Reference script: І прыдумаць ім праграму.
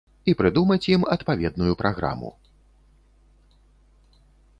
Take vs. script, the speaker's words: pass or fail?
fail